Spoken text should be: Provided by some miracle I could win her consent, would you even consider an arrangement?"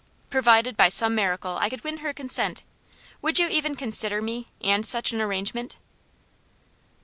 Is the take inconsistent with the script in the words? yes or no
yes